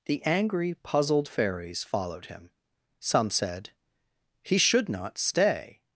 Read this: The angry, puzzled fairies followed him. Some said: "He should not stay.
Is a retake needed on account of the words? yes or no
no